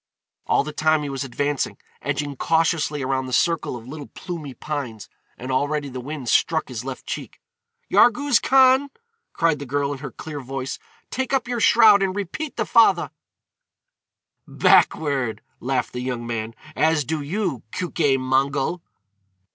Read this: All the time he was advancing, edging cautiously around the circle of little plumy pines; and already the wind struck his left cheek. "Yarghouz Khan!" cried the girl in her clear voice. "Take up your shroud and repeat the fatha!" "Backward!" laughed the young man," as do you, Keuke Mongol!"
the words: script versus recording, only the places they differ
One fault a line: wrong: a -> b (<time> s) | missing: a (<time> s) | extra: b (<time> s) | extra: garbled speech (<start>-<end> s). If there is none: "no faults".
no faults